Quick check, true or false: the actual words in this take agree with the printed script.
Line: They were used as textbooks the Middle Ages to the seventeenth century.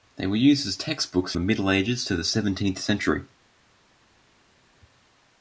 true